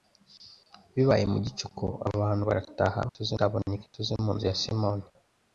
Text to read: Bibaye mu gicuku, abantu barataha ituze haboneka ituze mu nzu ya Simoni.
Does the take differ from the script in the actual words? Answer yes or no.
no